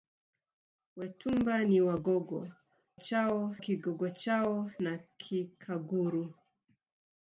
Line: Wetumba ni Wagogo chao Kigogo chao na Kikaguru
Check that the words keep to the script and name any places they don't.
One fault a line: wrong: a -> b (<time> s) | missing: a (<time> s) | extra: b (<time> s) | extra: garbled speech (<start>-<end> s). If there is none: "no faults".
no faults